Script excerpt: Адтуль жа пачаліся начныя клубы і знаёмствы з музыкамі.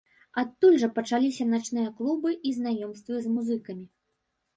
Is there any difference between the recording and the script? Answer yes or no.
no